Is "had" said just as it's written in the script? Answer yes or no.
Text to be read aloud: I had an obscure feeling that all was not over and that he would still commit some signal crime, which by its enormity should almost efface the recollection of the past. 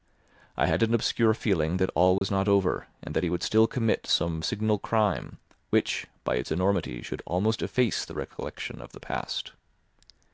yes